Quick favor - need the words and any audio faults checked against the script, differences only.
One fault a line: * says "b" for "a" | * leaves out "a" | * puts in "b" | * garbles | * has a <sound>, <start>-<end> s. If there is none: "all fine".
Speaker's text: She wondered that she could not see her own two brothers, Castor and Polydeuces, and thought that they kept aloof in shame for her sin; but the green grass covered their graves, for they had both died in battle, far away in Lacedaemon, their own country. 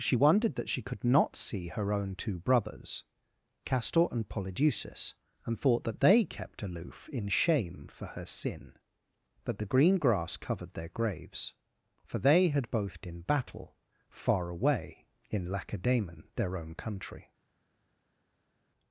* leaves out "died"